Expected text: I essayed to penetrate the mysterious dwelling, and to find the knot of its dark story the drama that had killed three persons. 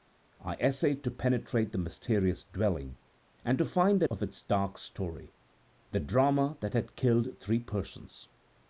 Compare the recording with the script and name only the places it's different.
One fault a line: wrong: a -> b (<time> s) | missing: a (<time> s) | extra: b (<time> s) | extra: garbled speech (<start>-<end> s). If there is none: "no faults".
missing: knot (4.1 s)